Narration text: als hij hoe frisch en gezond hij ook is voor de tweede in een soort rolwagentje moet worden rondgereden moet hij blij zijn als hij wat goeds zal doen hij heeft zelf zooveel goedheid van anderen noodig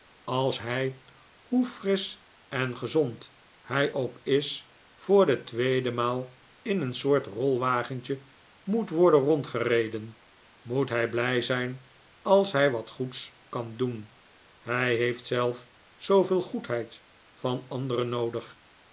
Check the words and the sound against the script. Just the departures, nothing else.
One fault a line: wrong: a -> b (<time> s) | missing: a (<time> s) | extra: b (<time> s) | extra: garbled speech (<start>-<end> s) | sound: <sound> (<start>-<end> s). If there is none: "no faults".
extra: maal (5.9 s)
wrong: zal -> kan (13.5 s)